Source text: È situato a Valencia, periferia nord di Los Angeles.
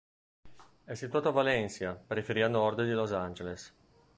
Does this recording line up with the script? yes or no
yes